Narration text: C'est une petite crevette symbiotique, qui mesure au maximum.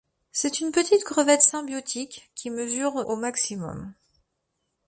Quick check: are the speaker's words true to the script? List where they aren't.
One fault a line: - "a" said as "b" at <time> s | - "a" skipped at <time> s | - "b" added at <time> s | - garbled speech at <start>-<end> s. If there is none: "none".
none